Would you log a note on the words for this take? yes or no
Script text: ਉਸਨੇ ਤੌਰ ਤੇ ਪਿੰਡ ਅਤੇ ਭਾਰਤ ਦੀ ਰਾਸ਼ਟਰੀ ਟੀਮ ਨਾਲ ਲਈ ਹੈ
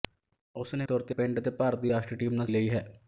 no